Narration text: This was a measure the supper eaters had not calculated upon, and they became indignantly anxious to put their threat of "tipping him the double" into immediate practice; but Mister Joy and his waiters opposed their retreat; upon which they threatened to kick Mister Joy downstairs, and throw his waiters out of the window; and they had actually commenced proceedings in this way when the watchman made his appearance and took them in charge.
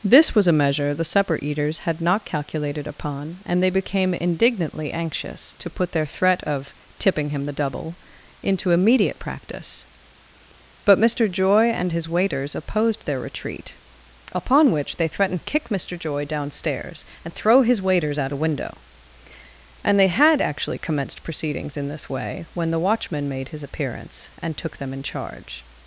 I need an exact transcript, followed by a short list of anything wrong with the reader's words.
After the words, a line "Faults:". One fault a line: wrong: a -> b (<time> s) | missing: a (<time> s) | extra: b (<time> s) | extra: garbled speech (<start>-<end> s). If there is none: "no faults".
This was a measure the supper eaters had not calculated upon, and they became indignantly anxious to put their threat of "tipping him the double" into immediate practice; but Mister Joy and his waiters opposed their retreat; upon which they threatened kick Mister Joy downstairs, and throw his waiters out the window; and they had actually commenced proceedings in this way when the watchman made his appearance and took them in charge.
Faults:
missing: to (15.4 s)
missing: of (18.3 s)